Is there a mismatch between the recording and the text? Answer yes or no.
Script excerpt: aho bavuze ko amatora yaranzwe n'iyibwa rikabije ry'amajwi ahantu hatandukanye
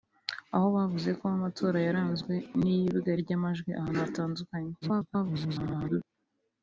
yes